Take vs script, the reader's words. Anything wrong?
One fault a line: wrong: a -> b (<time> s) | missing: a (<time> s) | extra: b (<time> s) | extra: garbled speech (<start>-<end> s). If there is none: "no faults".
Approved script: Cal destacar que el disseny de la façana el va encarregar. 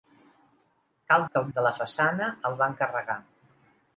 missing: destacar (1.2 s)
missing: disseny (1.5 s)